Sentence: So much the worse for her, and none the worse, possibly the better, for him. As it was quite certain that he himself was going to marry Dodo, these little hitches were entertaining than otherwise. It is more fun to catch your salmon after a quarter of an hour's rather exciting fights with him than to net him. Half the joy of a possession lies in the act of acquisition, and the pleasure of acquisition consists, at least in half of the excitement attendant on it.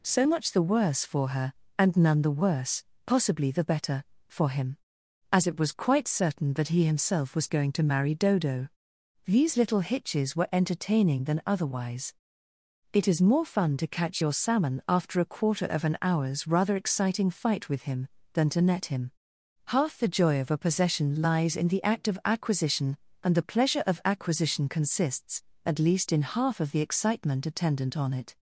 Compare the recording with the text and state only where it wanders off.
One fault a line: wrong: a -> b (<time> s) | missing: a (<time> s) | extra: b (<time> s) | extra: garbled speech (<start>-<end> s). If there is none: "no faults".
wrong: fights -> fight (17.3 s)